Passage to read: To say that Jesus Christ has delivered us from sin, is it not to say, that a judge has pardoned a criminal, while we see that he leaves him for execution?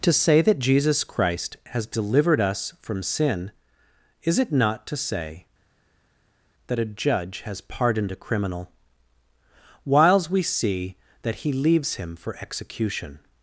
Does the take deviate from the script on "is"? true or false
false